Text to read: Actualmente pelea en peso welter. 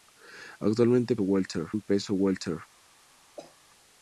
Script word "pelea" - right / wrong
wrong